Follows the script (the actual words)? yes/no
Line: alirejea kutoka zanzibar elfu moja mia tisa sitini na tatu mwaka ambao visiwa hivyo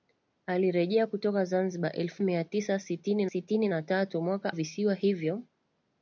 no